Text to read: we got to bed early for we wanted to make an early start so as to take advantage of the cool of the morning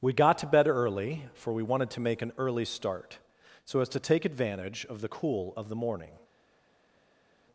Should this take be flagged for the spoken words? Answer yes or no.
no